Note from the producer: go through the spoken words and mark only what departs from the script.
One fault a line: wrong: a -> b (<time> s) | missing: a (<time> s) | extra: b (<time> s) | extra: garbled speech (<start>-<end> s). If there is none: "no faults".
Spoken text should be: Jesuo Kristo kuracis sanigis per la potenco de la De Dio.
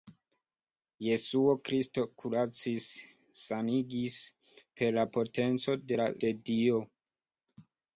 no faults